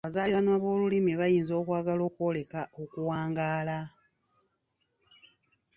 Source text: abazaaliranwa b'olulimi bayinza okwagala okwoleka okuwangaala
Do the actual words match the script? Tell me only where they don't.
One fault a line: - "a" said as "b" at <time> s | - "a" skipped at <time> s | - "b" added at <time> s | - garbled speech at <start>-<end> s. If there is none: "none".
none